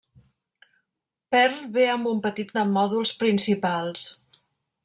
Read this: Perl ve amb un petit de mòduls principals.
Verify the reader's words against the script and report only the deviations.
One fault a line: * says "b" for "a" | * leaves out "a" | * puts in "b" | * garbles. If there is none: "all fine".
all fine